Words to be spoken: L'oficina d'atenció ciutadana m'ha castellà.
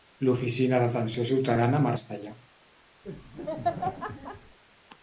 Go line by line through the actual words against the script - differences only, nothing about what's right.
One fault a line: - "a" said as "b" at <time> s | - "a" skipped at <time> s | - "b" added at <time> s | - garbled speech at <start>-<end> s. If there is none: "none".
none